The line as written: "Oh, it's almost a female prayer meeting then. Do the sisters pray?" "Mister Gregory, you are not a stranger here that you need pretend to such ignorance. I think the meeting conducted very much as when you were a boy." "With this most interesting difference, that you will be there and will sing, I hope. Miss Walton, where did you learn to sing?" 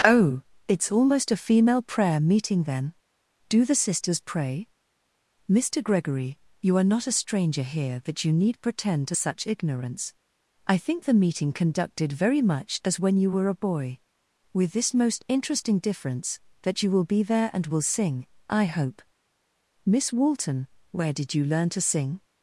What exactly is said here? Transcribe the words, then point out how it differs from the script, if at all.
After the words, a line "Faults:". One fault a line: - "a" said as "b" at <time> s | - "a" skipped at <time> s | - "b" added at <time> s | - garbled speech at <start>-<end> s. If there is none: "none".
"Oh, it's almost a female prayer meeting then. Do the sisters pray?" "Mister Gregory, you are not a stranger here that you need pretend to such ignorance. I think the meeting conducted very much as when you were a boy." "With this most interesting difference, that you will be there and will sing, I hope. Miss Walton, where did you learn to sing?"
Faults:
none